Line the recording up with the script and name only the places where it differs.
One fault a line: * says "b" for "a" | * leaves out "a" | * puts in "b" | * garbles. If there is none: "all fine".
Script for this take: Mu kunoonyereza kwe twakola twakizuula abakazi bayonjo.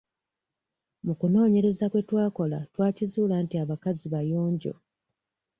* puts in "nti"